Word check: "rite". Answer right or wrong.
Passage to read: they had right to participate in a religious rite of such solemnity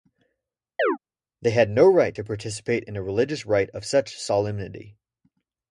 right